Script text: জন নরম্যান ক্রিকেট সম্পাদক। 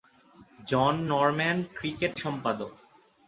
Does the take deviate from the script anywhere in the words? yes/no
no